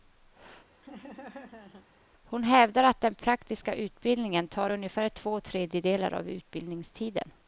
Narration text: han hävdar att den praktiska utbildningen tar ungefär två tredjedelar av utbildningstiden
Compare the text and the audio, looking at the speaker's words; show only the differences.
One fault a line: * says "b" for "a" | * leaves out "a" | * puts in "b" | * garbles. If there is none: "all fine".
* says "hon" for "han"